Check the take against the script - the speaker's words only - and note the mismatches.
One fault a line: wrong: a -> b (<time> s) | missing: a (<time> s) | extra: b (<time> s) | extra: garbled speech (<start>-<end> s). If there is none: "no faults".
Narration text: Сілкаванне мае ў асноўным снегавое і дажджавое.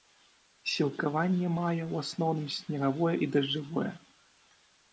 no faults